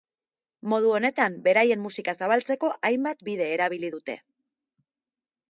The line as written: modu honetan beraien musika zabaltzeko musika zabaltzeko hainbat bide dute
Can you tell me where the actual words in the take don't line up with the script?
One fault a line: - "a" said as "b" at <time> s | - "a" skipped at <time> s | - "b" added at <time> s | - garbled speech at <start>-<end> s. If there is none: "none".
- "musika zabaltzeko" skipped at 2.7 s
- "erabili" added at 3.6 s